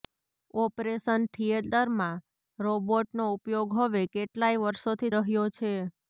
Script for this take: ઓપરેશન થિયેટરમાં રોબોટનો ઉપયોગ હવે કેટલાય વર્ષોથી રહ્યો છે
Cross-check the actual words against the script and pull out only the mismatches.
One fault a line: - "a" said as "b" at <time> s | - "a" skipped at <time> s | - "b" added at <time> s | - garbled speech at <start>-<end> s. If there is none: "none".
none